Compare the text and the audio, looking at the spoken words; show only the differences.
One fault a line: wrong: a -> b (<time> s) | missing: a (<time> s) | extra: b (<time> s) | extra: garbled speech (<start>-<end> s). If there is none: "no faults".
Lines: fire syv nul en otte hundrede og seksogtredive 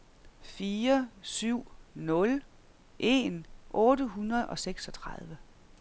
no faults